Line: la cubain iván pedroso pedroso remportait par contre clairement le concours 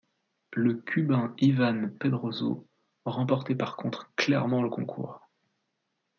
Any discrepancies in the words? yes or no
yes